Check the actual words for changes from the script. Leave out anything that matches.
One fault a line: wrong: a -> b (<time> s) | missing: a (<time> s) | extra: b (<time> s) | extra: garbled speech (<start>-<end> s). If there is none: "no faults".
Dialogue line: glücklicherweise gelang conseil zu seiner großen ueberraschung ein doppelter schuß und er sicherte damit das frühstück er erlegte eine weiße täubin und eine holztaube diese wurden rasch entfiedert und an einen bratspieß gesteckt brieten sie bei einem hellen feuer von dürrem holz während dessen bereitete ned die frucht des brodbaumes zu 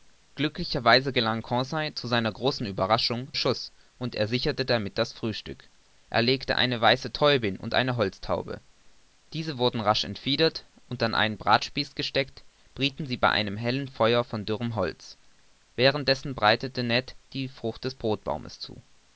missing: ein doppelter (3.3 s)